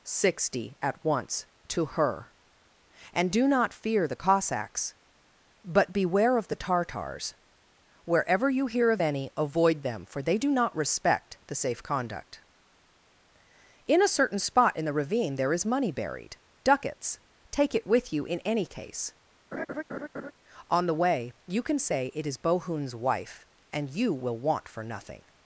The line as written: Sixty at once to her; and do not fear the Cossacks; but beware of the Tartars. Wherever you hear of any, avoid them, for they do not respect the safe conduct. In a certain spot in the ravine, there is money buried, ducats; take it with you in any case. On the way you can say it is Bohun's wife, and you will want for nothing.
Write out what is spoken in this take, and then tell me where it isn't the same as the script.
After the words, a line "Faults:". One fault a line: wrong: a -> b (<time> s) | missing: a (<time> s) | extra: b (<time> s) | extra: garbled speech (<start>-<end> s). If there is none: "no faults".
Sixty at once to her; and do not fear the Cossacks; but beware of the Tartars. Wherever you hear of any, avoid them, for they do not respect the safe conduct. In a certain spot in the ravine, there is money buried, ducats; take it with you in any case. On the way you can say it is Bohun's wife, and you will want for nothing.
Faults:
no faults